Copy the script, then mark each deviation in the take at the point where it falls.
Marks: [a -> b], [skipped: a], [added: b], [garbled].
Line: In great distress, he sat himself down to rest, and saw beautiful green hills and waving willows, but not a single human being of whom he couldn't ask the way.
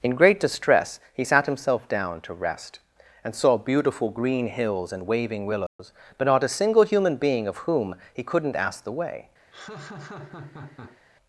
In great distress, he sat himself down to rest, and saw beautiful green hills and waving willows, but not a single human being of whom he couldn't ask the way.